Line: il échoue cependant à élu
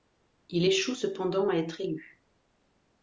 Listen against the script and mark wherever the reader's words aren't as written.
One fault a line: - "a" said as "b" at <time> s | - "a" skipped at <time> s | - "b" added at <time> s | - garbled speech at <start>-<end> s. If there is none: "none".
- "être" added at 1.5 s